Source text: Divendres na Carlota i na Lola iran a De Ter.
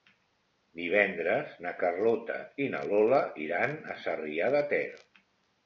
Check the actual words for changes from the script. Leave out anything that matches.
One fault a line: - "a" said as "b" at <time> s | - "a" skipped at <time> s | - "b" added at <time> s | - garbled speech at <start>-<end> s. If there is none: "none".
- "Sarrià" added at 4.1 s